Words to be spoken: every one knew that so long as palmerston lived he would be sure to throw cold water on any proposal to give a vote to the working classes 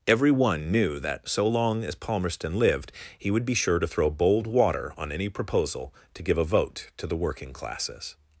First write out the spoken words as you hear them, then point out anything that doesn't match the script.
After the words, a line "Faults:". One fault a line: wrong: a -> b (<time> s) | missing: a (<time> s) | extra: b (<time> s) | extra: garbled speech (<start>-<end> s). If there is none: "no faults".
every one knew that so long as palmerston lived he would be sure to throw bold water on any proposal to give a vote to the working classes
Faults:
wrong: cold -> bold (4.1 s)